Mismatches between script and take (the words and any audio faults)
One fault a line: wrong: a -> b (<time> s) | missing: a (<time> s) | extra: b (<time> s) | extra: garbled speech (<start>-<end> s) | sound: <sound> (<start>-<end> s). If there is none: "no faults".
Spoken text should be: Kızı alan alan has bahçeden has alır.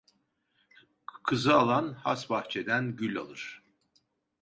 missing: alan (1.9 s)
wrong: has -> gül (2.9 s)